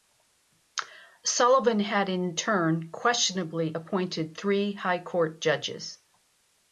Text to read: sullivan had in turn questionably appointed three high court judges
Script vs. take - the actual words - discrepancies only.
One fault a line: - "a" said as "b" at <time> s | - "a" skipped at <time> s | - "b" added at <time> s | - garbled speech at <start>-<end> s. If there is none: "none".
none